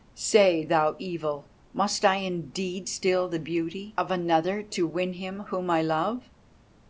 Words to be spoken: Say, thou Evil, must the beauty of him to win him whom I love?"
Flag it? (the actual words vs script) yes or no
yes